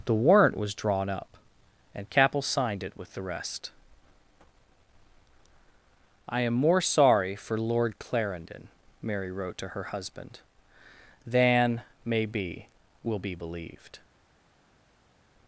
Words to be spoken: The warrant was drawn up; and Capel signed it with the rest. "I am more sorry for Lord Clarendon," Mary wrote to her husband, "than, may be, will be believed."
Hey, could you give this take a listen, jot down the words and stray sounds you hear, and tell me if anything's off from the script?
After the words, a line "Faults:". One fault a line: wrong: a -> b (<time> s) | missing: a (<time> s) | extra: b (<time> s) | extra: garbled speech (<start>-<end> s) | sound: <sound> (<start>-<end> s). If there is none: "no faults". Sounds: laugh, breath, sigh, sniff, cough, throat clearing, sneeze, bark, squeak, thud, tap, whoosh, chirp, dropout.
The warrant was drawn up; and Capel signed it with the rest. "I am more sorry for Lord Clarendon," Mary wrote to her husband, "than, may be, will be believed."
Faults:
no faults